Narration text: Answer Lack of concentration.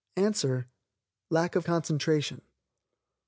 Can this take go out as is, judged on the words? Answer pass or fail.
pass